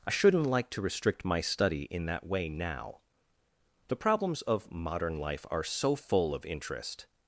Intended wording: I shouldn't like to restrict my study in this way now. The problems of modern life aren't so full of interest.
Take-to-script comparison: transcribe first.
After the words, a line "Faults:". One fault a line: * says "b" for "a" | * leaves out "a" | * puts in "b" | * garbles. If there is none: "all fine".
I shouldn't like to restrict my study in that way now. The problems of modern life are so full of interest.
Faults:
* says "that" for "this"
* says "are" for "aren't"